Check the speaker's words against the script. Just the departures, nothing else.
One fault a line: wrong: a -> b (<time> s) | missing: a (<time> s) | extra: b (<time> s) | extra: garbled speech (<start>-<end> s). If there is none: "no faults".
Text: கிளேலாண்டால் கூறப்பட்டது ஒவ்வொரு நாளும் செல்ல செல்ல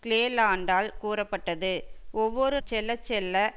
missing: நாளும் (2.6 s)